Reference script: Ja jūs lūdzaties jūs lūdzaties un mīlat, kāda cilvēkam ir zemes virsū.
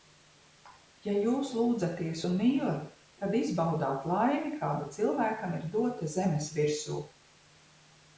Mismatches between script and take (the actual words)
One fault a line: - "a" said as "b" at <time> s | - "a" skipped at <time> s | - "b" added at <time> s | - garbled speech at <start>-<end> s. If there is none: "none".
- "jūs lūdzaties un mīlat" said as "un mīlat tad izbaudāt laimi" at 2.3 s
- "dota" added at 5.7 s